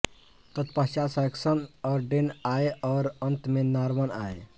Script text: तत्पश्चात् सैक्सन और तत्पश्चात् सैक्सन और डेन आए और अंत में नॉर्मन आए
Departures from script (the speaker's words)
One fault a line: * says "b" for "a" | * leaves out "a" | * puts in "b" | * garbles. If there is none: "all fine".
* leaves out "तत्पश्चात् सैक्सन और"